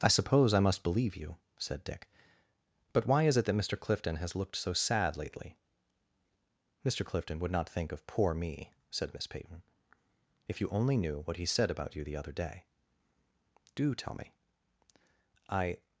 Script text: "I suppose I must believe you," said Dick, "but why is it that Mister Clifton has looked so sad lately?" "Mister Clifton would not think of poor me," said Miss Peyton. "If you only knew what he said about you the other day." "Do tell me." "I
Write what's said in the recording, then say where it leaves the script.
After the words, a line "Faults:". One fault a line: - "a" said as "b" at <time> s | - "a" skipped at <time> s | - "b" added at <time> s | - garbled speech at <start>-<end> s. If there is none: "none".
"I suppose I must believe you," said Dick, "but why is it that Mister Clifton has looked so sad lately?" "Mister Clifton would not think of poor me," said Miss Peyton. "If you only knew what he said about you the other day." "Do tell me." "I
Faults:
none